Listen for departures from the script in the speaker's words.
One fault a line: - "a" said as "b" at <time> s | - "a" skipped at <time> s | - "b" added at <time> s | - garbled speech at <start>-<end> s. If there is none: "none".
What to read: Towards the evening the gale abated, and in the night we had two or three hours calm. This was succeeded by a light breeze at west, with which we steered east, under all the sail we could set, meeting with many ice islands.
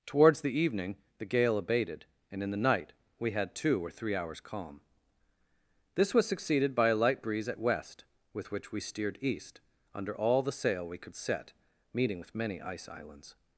none